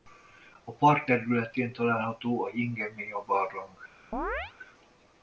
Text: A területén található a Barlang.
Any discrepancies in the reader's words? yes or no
yes